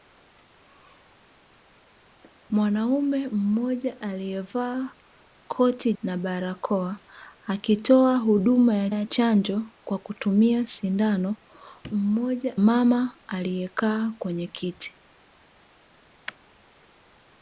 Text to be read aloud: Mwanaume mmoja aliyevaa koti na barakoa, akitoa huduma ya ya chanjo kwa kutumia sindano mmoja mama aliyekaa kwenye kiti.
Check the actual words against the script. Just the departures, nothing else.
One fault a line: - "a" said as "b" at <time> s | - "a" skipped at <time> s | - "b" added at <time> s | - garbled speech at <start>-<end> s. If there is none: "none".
none